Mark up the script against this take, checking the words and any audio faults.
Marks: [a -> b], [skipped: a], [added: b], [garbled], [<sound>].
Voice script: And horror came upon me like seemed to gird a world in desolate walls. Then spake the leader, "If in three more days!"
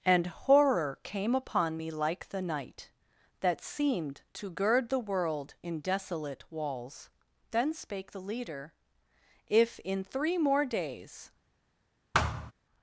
And horror came upon me like [added: the night That] seemed to gird [a -> the] world in desolate walls. Then spake the leader, "If in three more days!" [thud]